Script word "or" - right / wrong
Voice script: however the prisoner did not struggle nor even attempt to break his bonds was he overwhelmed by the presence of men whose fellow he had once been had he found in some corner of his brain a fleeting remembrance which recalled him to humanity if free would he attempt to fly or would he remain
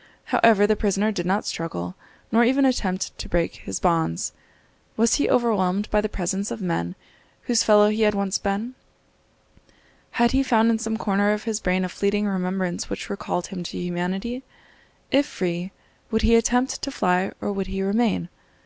right